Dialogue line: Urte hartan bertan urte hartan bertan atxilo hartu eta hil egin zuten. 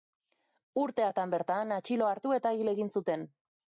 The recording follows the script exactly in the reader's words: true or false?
false